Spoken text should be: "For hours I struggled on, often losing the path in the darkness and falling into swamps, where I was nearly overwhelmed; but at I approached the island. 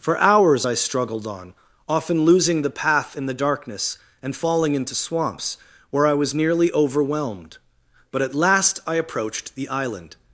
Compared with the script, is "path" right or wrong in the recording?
right